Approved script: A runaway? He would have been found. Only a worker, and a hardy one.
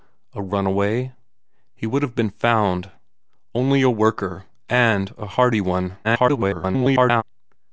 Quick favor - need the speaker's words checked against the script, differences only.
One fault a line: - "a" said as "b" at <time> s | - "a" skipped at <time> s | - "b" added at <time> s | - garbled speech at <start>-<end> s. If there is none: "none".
- garbled speech at 6.0-7.2 s